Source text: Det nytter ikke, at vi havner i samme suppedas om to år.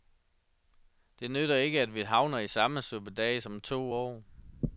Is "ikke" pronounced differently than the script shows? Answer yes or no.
no